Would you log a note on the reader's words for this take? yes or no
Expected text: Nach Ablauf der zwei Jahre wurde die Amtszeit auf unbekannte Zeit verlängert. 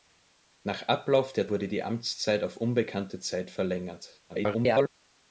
yes